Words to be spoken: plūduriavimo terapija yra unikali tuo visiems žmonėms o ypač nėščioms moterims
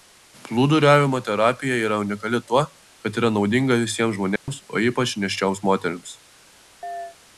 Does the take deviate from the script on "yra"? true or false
false